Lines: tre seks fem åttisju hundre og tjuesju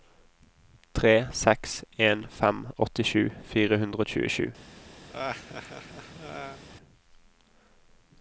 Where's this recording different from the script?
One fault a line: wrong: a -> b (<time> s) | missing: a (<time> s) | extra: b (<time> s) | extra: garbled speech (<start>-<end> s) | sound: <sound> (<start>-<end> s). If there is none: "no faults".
extra: en (2.1 s)
extra: fire (3.5 s)
sound: laugh (5.1-6.6 s)